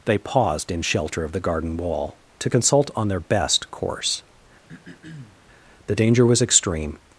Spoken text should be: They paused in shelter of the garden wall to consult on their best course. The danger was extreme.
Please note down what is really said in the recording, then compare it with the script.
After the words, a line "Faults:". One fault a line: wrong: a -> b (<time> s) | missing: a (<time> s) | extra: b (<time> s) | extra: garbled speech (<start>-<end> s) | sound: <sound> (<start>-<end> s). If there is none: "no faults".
They paused in shelter of the garden wall to consult on their best course. The danger was extreme.
Faults:
sound: throat clearing (4.7-5.4 s)